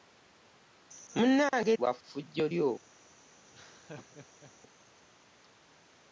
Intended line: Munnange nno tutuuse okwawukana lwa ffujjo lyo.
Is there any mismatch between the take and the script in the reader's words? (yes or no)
yes